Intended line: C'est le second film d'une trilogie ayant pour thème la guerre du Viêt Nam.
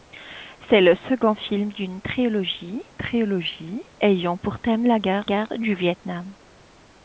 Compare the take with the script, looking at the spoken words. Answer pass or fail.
fail